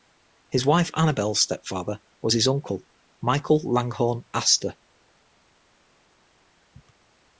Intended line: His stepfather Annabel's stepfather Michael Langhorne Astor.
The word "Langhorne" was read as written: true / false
true